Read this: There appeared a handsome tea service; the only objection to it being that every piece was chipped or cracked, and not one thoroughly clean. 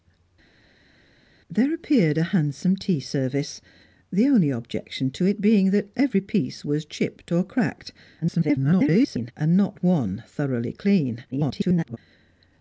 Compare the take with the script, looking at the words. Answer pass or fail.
fail